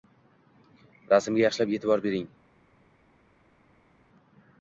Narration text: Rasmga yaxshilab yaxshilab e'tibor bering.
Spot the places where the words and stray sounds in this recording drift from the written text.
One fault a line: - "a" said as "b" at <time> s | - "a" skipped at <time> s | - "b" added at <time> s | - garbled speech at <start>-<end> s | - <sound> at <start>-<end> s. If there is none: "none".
- "yaxshilab" skipped at 1.8 s